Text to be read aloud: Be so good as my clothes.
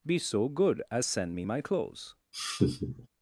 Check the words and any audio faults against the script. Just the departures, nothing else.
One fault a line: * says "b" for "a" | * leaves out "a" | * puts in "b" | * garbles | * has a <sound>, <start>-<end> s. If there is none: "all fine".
* puts in "send me"
* has a laugh, 2.3-3.1 s